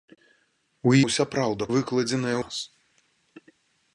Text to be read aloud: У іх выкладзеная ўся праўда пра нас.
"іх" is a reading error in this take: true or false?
true